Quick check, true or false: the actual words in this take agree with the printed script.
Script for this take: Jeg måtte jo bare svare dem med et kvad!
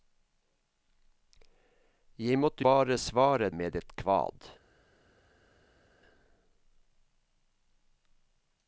false